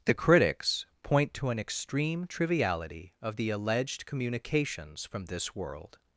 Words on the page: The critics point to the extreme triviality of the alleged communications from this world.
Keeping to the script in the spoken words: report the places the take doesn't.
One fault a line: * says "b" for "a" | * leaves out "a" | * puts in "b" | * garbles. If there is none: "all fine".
* says "an" for "the"